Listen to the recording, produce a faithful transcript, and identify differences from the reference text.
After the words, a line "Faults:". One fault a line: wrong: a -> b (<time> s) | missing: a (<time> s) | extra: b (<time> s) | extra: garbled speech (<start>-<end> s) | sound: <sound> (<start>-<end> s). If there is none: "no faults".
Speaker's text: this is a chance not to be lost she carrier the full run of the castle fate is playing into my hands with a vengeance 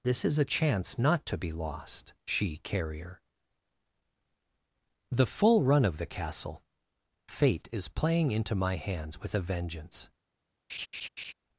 this is a chance not to be lost she carrier the full run of the castle fate is playing into my hands with a vengeance
Faults:
sound: laugh (10.7-11.3 s)